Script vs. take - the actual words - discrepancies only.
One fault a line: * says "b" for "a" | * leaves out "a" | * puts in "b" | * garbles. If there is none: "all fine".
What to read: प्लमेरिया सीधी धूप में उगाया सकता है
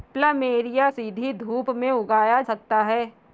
all fine